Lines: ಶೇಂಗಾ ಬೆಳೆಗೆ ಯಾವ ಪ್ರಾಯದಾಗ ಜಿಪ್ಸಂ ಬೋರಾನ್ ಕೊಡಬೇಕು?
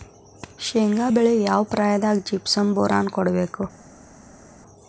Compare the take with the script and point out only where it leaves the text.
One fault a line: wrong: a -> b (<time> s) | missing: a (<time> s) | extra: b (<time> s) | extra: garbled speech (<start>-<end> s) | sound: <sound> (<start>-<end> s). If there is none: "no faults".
no faults